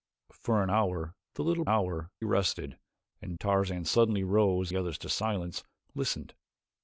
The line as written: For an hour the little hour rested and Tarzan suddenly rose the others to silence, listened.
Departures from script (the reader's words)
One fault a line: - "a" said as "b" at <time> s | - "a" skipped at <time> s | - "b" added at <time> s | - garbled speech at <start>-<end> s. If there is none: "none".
none